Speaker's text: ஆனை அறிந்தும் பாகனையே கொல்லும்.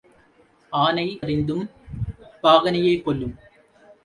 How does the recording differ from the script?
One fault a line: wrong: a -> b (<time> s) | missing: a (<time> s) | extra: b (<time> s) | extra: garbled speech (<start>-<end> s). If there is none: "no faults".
no faults